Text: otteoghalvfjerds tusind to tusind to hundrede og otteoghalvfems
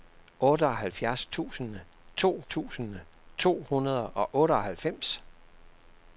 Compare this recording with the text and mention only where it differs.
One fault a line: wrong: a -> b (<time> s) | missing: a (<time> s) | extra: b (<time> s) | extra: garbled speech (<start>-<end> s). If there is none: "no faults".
no faults